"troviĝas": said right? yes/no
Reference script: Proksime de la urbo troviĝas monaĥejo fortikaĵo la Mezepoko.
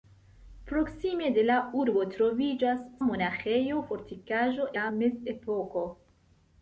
yes